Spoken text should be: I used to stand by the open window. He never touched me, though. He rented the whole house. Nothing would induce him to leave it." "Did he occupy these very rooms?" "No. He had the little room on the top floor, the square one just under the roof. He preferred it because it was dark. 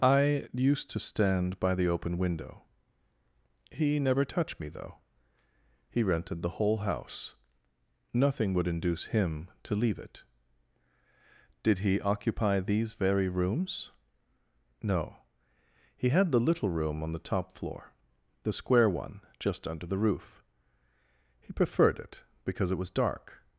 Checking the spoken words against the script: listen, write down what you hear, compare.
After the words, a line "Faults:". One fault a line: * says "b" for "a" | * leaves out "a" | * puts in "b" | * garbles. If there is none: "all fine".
I used to stand by the open window. He never touched me, though. He rented the whole house. Nothing would induce him to leave it." "Did he occupy these very rooms?" "No. He had the little room on the top floor, the square one just under the roof. He preferred it because it was dark.
Faults:
all fine